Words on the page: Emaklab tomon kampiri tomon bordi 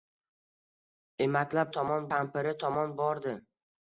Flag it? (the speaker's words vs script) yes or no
no